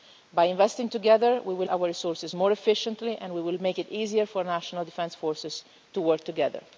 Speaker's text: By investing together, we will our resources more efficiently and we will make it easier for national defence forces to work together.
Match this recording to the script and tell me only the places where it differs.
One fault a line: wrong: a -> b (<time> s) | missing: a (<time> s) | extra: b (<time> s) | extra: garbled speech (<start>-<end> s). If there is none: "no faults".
no faults